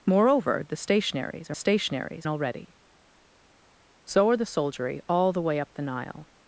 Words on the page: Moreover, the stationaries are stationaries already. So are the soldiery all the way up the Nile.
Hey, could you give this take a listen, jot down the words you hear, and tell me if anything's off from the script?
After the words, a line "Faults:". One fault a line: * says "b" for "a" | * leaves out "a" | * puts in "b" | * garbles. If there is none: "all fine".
Moreover, the stationaries are stationaries already. So are the soldiery all the way up the Nile.
Faults:
all fine